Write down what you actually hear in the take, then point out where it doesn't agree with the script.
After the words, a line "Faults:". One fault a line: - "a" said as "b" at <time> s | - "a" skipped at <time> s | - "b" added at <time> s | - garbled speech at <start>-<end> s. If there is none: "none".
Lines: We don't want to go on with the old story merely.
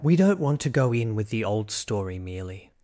We don't want to go in with the old story merely.
Faults:
- "on" said as "in" at 0.9 s